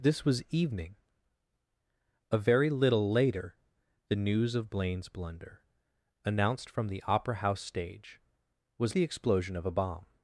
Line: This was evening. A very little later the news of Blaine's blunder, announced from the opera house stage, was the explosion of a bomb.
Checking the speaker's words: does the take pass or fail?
pass